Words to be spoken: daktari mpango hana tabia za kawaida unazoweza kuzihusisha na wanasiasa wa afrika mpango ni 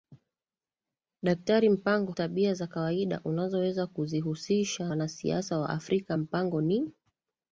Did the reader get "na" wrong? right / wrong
wrong